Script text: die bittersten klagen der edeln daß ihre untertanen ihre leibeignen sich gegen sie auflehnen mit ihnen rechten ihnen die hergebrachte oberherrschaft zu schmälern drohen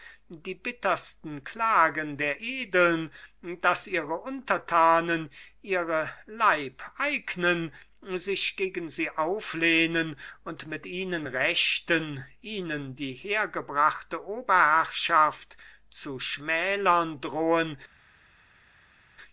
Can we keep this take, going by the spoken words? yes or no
no